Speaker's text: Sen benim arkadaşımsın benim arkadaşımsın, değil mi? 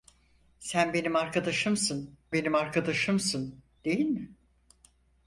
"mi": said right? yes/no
yes